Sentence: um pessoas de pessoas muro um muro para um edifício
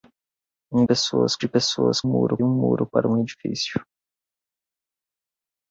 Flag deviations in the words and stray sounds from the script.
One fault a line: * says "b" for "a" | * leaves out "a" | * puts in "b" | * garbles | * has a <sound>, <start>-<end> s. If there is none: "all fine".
all fine